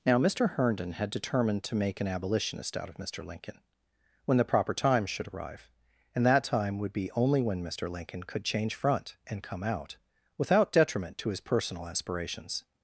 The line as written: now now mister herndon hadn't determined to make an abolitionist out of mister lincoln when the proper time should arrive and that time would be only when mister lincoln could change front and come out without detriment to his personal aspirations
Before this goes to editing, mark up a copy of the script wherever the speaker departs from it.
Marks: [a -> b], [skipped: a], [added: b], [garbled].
now [skipped: now] mister herndon [hadn't -> had] determined to make an abolitionist out of mister lincoln when the proper time should arrive and that time would be only when mister lincoln could change front and come out without detriment to his personal aspirations